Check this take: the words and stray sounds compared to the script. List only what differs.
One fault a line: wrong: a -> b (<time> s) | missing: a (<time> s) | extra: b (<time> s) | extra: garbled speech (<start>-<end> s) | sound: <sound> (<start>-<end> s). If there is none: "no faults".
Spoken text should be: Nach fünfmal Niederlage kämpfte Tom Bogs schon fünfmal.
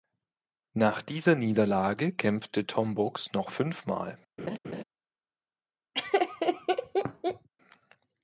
wrong: fünfmal -> dieser (1.0 s)
wrong: schon -> noch (3.3 s)
sound: laugh (4.4-4.8 s)
sound: laugh (5.9-7.5 s)